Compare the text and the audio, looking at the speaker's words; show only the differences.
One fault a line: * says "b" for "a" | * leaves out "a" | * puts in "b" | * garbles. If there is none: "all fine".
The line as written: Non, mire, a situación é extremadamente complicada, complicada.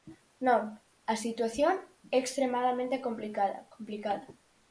* leaves out "mire"